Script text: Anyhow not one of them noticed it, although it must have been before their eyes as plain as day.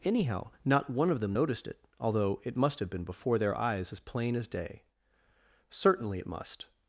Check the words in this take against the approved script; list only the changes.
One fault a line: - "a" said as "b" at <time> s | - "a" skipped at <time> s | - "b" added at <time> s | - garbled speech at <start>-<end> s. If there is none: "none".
- "Certainly it must" added at 5.7 s